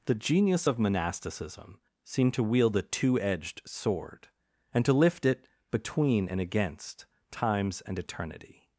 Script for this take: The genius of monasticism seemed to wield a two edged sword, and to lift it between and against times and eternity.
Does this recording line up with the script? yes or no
yes